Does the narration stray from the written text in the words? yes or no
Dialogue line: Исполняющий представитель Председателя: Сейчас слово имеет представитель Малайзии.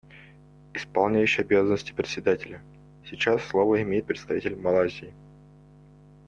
yes